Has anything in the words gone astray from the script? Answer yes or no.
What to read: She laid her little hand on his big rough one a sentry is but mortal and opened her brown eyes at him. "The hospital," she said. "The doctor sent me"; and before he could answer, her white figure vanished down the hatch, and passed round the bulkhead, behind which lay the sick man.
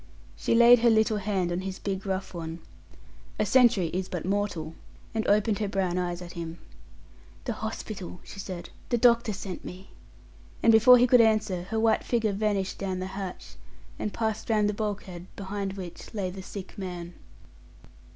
no